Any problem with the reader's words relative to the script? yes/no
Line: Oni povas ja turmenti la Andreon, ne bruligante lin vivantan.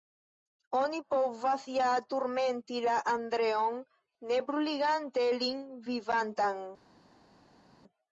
no